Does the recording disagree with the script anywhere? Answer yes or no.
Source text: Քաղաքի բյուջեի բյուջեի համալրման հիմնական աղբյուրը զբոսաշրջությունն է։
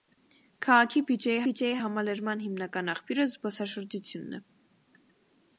no